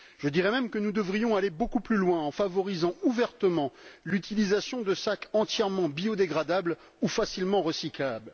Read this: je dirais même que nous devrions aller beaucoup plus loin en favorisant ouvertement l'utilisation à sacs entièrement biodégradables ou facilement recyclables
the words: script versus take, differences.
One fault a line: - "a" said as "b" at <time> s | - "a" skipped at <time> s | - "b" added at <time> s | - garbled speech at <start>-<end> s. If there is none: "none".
- "à" said as "de" at 4.8 s